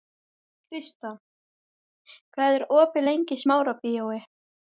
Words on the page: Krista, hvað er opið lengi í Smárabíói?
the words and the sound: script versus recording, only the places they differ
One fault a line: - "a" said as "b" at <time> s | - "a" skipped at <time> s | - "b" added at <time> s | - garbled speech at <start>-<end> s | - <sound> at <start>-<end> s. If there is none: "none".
none